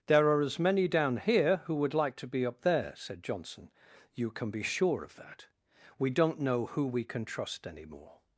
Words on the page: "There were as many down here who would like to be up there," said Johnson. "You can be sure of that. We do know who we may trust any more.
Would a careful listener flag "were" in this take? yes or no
yes